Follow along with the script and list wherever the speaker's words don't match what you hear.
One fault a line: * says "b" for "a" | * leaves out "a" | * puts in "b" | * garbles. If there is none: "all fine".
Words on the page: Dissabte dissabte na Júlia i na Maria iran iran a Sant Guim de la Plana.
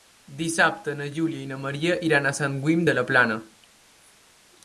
* leaves out "dissabte"
* leaves out "iran"